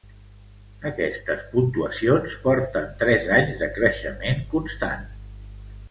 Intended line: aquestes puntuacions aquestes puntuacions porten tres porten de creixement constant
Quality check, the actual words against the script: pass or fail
fail